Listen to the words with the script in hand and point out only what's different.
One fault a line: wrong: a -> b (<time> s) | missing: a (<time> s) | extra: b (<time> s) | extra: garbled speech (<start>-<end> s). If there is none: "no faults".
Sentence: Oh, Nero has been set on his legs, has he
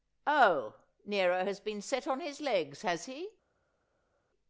no faults